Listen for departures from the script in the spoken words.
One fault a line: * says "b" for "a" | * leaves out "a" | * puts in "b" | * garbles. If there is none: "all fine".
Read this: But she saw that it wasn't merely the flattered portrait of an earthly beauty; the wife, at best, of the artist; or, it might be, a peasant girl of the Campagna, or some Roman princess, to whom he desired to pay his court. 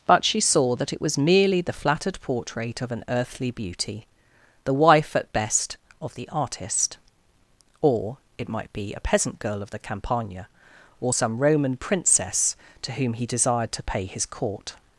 * says "was" for "wasn't"